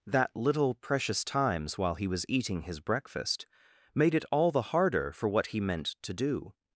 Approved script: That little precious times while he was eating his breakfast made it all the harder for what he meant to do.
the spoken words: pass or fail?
pass